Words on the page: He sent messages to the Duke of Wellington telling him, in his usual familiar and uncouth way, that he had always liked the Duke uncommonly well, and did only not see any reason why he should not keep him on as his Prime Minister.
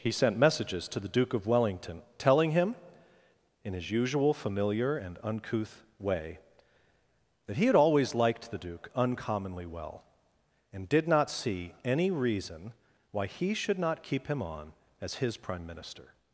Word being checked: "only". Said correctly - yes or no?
no